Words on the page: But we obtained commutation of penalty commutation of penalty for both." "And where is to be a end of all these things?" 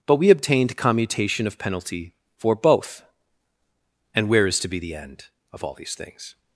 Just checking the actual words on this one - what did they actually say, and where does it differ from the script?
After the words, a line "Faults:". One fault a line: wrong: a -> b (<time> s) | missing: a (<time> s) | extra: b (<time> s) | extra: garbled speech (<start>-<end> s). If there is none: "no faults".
But we obtained commutation of penalty for both." "And where is to be the end of all these things?"
Faults:
missing: commutation of penalty (2.1 s)
wrong: a -> the (4.8 s)